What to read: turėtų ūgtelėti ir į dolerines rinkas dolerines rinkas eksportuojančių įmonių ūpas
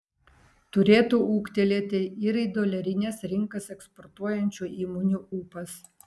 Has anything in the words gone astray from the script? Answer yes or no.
yes